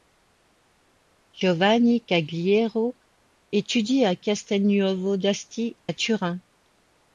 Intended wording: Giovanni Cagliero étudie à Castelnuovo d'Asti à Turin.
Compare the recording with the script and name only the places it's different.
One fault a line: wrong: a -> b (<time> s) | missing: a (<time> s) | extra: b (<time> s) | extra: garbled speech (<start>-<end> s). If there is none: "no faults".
no faults